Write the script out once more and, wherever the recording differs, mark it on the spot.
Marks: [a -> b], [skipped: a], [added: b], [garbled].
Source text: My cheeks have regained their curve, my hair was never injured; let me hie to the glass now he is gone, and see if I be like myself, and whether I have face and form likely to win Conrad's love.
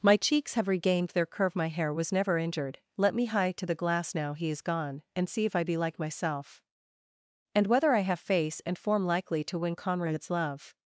My cheeks have regained their curve, my hair was never injured; let me hie to the glass now he is gone, and see if I be like myself, and whether I have face and form likely to win Conrad's love.